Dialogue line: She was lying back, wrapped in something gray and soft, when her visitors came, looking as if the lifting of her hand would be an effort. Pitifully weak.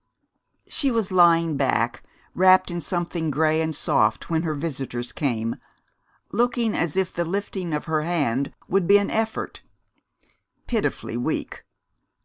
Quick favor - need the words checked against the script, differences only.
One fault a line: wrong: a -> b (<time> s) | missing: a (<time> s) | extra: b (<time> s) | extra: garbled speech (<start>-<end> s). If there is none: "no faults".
no faults